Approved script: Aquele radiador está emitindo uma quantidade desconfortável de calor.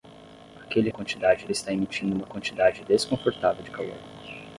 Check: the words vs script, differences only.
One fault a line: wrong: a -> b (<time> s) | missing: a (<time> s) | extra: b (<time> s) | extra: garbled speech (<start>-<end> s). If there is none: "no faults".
wrong: radiador -> quantidade (0.9 s)